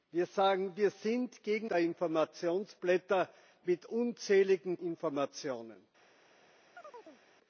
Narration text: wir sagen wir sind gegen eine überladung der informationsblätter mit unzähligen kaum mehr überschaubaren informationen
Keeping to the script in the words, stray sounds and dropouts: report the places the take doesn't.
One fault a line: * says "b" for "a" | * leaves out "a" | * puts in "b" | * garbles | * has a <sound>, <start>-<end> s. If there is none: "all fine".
* leaves out "eine überladung"
* leaves out "kaum mehr überschaubaren"
* has a chirp, 6.8-7.2 s